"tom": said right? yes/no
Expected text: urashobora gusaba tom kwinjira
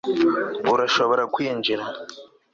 no